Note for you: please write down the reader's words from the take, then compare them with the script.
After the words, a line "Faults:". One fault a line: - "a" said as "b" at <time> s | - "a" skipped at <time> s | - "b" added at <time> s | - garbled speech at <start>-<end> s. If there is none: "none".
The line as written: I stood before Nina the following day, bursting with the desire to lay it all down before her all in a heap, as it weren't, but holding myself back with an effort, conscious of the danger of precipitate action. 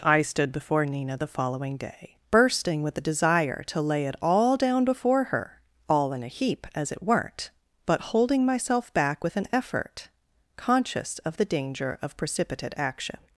I stood before Nina the following day, bursting with the desire to lay it all down before her all in a heap, as it weren't, but holding myself back with an effort, conscious of the danger of precipitate action.
Faults:
none